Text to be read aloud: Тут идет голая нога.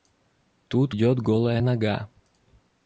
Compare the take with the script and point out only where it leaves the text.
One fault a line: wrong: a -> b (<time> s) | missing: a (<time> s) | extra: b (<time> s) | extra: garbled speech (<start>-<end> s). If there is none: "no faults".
no faults